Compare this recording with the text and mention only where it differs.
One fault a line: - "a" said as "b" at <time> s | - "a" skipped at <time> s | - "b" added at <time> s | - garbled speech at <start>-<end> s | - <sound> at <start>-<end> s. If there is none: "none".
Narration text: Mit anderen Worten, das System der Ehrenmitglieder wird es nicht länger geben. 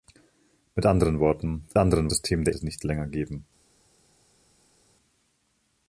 - "das" said as "anderen" at 1.8 s
- "Ehrenmitglieder wird" skipped at 2.5 s